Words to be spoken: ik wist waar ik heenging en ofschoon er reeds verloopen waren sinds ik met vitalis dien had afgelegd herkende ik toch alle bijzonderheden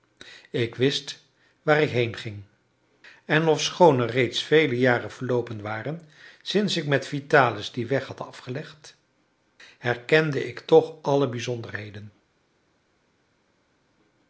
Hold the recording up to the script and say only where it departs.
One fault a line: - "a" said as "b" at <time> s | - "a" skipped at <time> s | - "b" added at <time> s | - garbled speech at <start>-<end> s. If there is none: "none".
- "vele jaren" added at 4.4 s
- "weg" added at 7.9 s